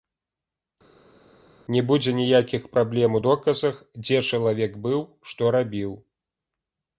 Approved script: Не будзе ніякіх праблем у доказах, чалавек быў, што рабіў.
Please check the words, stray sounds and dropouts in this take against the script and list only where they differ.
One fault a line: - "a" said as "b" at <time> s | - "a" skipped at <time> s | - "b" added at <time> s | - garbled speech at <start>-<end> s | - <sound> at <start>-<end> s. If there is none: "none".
- "дзе" added at 4.0 s